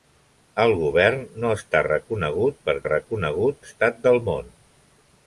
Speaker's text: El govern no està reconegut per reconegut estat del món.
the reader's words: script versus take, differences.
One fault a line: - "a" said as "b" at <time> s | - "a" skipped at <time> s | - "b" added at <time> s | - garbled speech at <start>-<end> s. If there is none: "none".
none